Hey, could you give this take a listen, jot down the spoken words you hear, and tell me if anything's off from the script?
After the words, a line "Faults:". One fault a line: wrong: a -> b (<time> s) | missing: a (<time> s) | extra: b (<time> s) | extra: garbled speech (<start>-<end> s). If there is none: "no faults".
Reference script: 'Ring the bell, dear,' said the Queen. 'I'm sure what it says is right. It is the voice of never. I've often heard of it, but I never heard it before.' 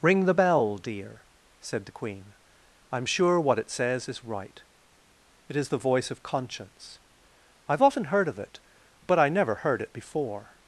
'Ring the bell, dear,' said the Queen. 'I'm sure what it says is right. It is the voice of conscience. I've often heard of it, but I never heard it before.'
Faults:
wrong: never -> conscience (6.2 s)